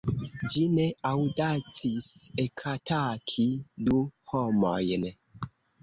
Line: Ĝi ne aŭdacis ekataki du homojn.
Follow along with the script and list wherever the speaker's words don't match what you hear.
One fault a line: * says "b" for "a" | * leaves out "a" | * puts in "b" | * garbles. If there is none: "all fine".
all fine